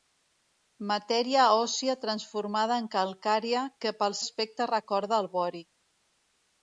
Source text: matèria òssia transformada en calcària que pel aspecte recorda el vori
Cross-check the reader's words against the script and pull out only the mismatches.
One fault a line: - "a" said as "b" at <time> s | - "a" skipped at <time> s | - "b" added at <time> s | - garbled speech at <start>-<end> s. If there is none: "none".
none